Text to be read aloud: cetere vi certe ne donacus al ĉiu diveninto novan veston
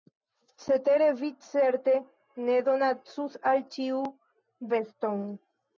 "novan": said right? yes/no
no